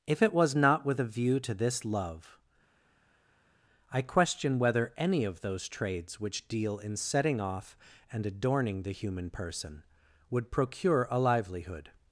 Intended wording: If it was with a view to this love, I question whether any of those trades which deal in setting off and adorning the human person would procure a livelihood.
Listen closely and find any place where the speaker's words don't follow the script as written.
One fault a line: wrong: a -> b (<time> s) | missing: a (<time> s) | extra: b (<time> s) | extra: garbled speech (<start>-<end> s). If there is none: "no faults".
extra: not (0.6 s)